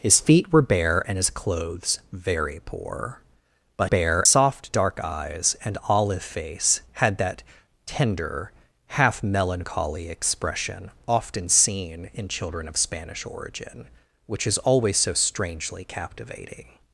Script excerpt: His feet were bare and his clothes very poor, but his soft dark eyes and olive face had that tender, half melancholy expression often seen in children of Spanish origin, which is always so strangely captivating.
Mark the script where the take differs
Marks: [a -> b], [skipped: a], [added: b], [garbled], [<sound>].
His feet were bare and his clothes very poor, but [his -> bare] soft dark eyes and olive face had that tender, half melancholy expression often seen in children of Spanish origin, which is always so strangely captivating.